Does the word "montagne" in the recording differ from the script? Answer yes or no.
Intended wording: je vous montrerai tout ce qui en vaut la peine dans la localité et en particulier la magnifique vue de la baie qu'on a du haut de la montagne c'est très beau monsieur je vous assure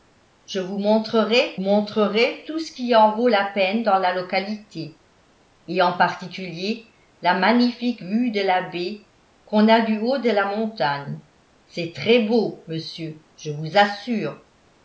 no